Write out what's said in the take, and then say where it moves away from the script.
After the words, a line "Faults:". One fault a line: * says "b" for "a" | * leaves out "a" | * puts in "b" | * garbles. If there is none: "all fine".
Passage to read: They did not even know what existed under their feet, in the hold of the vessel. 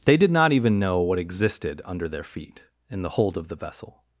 They did not even know what existed under their feet, in the hold of the vessel.
Faults:
all fine